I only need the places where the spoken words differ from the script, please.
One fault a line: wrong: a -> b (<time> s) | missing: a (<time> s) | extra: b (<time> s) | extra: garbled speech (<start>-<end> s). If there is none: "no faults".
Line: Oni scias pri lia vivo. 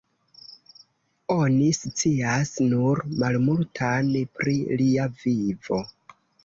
extra: nur malmultan (2.7 s)